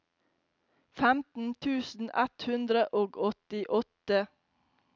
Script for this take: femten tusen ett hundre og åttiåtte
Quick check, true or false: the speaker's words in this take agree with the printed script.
true